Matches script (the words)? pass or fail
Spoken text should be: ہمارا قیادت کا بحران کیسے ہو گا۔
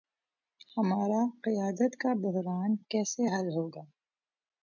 fail